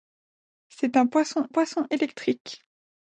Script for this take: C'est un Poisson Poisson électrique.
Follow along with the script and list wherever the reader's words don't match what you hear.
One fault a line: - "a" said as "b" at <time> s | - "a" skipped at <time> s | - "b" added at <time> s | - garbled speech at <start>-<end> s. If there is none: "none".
none